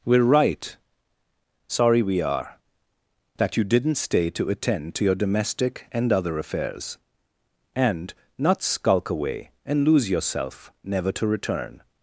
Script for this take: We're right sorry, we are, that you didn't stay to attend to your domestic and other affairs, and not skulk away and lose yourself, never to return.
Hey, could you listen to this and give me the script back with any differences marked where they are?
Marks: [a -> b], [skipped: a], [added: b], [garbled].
We're right sorry, we are, that you didn't stay to attend to your domestic and other affairs, and not skulk away and lose yourself, never to return.